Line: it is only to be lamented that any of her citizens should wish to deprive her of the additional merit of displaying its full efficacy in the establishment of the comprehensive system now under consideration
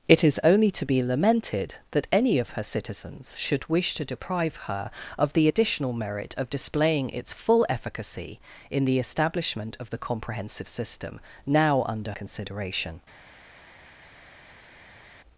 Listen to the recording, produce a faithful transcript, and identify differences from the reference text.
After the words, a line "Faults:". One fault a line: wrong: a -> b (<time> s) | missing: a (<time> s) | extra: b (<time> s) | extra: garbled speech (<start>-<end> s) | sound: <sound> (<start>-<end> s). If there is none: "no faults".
it is only to be lamented that any of her citizens should wish to deprive her of the additional merit of displaying its full efficacy in the establishment of the comprehensive system now under consideration
Faults:
no faults